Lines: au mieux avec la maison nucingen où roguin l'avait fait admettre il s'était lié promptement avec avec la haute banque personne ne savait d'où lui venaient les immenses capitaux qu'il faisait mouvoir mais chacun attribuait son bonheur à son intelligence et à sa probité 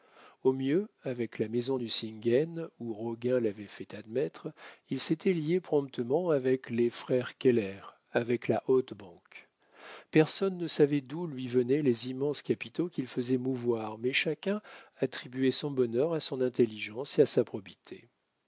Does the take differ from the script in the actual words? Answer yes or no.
yes